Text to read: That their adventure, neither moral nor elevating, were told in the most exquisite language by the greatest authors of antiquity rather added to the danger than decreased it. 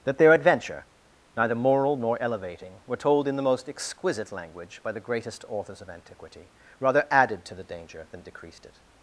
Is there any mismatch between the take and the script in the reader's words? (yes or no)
no